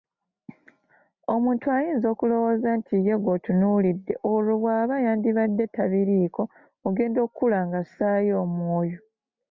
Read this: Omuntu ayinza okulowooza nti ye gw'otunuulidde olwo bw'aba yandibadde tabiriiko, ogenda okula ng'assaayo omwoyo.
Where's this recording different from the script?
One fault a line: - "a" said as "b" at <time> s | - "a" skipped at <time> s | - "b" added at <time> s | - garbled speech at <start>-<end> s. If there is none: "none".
none